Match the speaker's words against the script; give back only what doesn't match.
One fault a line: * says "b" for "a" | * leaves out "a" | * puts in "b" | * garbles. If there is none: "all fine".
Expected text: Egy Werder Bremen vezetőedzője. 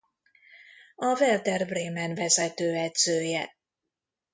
* says "A" for "Egy"